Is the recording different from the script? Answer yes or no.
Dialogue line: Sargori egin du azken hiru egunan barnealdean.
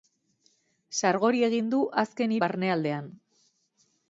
yes